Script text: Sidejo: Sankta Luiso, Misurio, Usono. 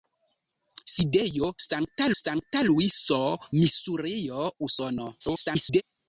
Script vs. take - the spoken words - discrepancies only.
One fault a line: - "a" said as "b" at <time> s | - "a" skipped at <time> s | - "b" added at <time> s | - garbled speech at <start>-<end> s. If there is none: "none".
- "Sankta" added at 2.2 s
- garbled speech at 5.2-5.8 s